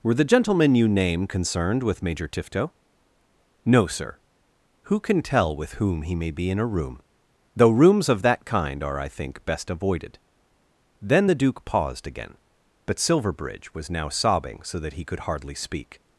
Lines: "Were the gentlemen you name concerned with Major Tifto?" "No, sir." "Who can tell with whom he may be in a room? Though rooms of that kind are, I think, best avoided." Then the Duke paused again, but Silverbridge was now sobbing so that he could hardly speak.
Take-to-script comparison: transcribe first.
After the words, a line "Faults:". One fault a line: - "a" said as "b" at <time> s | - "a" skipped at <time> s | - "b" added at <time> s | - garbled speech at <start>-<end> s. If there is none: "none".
"Were the gentlemen you name concerned with Major Tifto?" "No, sir." "Who can tell with whom he may be in a room? Though rooms of that kind are, I think, best avoided." Then the Duke paused again, but Silverbridge was now sobbing so that he could hardly speak.
Faults:
none